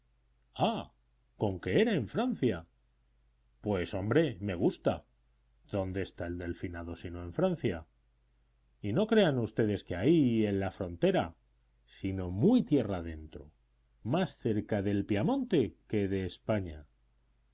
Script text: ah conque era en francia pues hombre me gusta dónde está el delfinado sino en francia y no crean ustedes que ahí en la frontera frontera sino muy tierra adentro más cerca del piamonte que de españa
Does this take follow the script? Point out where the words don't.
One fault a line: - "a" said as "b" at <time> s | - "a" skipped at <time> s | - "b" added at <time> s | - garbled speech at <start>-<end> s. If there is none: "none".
- "frontera" skipped at 11.3 s